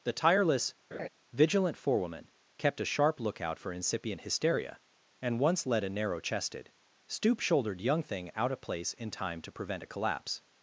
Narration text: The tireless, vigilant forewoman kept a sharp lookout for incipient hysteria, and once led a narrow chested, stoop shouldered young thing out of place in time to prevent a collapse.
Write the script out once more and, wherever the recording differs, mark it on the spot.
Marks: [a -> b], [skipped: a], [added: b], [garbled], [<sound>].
The tireless, [laugh] vigilant forewoman kept a sharp lookout for incipient hysteria, and once led a narrow chested, stoop shouldered young thing out of place in time to prevent a collapse.